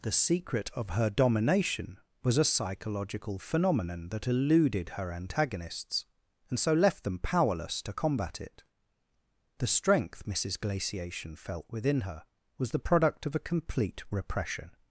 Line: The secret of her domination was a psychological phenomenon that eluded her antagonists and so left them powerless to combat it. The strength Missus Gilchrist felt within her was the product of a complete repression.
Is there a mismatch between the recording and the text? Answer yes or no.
yes